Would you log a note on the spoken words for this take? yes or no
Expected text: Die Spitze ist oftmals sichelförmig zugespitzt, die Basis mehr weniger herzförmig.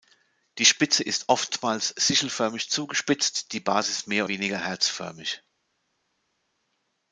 no